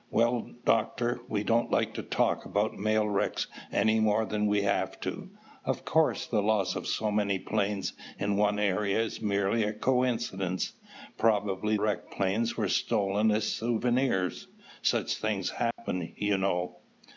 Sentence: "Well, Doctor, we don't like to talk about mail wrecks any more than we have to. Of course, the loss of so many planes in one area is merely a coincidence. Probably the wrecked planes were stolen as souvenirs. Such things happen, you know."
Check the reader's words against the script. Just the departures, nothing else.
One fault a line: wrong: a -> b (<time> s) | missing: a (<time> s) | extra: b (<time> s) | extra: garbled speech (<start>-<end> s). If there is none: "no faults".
missing: the (11.8 s)